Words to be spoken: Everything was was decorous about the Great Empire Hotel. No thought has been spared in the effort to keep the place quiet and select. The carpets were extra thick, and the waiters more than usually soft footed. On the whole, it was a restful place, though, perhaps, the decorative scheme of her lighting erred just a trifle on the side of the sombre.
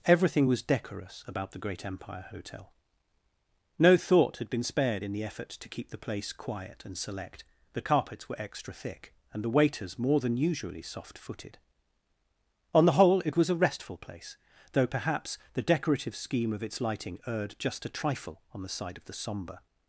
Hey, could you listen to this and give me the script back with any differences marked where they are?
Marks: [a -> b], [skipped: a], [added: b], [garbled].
Everything was [skipped: was] decorous about the Great Empire Hotel. No thought [has -> had] been spared in the effort to keep the place quiet and select. The carpets were extra thick, and the waiters more than usually soft footed. On the whole, it was a restful place, though, perhaps, the decorative scheme of [her -> its] lighting erred just a trifle on the side of the sombre.